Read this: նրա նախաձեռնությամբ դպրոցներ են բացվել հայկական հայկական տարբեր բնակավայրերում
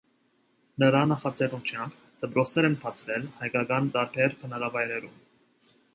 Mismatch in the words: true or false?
true